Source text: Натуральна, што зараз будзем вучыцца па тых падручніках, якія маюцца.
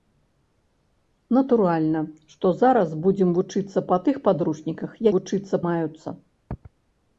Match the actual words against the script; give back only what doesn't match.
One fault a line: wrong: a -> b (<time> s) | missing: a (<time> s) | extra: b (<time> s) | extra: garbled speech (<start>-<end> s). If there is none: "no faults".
wrong: якія -> вучыцца (5.1 s)